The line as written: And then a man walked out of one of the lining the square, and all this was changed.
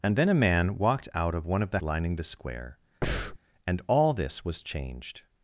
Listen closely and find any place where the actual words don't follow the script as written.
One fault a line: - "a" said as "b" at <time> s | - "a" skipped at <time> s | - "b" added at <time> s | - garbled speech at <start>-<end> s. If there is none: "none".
none